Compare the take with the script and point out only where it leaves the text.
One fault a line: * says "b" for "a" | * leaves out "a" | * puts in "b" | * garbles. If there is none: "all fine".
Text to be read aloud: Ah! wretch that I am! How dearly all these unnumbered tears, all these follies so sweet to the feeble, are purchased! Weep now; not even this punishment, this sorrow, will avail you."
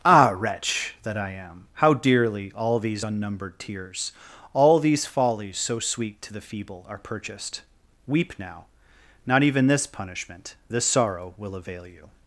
all fine